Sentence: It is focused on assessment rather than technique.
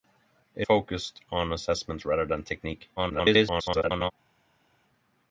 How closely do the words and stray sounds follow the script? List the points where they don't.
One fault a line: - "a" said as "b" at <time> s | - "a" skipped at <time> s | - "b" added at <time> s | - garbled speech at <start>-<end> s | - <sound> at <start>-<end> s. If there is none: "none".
- "is" skipped at 0.7 s
- garbled speech at 3.0-4.1 s